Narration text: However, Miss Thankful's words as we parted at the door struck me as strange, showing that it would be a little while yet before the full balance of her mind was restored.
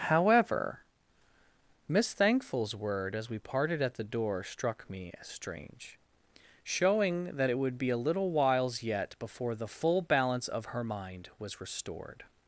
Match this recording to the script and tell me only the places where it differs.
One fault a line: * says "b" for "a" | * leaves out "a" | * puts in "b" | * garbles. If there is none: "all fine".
* says "word" for "words"
* says "whiles" for "while"